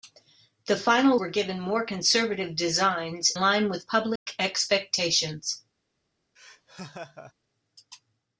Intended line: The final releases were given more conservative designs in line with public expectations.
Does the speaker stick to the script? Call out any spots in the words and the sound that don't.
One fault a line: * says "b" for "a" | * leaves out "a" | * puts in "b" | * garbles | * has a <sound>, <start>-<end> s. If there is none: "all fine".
* leaves out "releases"
* leaves out "in"
* has a dropout, 4.2-4.3 s
* has a laugh, 6.4-7.3 s